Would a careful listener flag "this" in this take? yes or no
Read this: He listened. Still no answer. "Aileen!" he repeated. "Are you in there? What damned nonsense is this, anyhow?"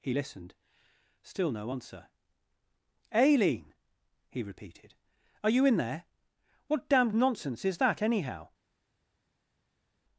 yes